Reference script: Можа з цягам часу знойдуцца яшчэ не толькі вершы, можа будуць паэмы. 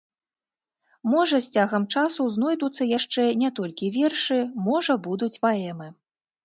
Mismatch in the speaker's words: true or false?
false